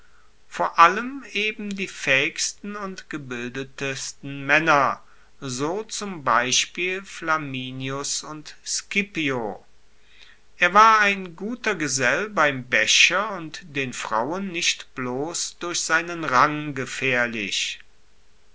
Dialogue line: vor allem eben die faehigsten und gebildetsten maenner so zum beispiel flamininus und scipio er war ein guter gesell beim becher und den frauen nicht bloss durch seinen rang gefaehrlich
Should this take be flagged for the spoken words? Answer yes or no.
no